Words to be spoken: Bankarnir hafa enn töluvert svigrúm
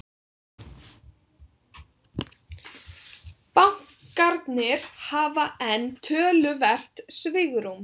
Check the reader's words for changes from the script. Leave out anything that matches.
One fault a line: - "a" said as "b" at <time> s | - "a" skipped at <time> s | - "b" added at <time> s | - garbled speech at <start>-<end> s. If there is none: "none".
none